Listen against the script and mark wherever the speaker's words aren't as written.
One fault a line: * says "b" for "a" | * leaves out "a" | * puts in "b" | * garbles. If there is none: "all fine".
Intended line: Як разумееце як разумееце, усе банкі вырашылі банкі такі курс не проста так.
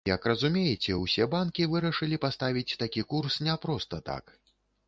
* leaves out "як разумееце"
* says "паставіць" for "банкі"